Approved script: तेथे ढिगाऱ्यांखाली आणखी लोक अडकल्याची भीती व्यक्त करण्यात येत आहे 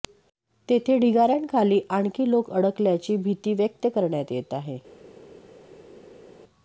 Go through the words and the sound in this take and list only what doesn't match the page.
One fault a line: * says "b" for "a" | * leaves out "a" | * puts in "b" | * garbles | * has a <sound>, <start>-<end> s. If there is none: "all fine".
all fine